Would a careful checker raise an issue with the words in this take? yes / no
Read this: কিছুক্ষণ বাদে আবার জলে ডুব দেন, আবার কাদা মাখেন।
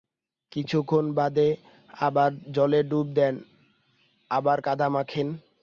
no